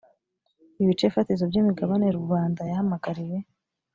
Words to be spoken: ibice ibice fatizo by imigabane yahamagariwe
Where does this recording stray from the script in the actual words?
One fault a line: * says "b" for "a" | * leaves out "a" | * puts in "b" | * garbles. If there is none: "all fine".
* leaves out "ibice"
* puts in "rubanda"